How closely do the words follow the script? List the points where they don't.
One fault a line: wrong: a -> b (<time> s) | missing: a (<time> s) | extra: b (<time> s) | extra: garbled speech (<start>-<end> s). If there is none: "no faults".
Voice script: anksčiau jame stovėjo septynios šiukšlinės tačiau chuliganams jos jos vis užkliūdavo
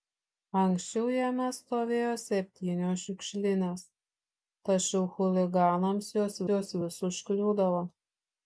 no faults